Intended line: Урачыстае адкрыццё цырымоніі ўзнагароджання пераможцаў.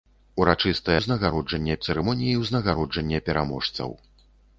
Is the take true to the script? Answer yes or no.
no